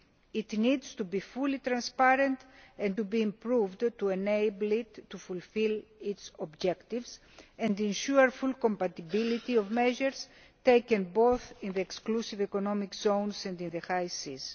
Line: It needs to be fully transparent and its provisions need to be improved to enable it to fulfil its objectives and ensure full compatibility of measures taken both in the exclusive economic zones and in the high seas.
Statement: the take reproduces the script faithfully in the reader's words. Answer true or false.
false